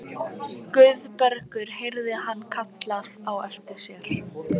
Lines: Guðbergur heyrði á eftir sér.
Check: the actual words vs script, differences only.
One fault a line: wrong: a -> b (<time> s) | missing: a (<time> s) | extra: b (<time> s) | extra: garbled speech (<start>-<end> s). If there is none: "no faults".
extra: hann kallað (2.2 s)